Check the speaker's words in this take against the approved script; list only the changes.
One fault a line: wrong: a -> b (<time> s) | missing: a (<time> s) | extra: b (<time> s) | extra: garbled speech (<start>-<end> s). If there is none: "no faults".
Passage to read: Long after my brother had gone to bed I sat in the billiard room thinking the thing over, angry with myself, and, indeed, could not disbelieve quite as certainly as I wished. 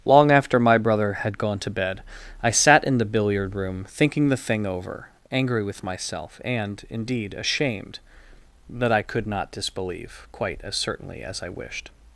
extra: ashamed that I (7.3 s)